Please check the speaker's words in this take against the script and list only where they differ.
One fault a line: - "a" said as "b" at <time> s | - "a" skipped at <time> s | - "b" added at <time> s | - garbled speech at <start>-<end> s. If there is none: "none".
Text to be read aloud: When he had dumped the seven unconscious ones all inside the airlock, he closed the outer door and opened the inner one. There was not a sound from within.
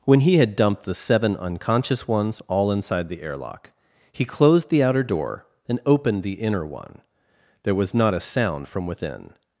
none